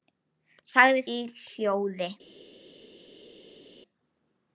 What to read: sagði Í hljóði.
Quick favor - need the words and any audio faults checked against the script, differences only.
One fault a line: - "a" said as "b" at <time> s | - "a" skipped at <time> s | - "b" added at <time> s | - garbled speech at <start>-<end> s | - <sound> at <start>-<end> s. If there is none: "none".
none